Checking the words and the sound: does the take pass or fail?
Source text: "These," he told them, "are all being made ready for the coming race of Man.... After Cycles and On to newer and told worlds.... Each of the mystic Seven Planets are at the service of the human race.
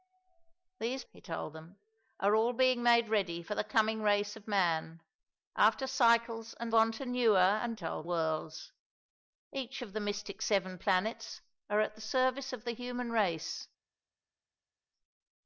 pass